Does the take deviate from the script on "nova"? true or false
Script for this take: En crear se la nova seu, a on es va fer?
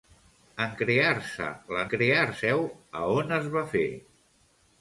true